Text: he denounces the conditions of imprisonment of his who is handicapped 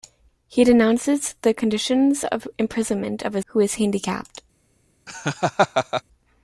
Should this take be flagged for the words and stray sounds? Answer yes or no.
yes